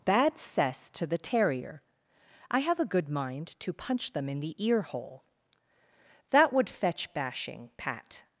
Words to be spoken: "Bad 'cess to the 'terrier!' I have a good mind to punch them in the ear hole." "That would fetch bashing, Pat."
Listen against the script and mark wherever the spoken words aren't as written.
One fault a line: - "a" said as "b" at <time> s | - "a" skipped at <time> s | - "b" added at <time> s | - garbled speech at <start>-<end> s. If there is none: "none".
none